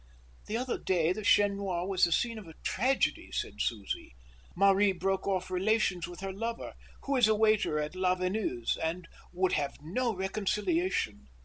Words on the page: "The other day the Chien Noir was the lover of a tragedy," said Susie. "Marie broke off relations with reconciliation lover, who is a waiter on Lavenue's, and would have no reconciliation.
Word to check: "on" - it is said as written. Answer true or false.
false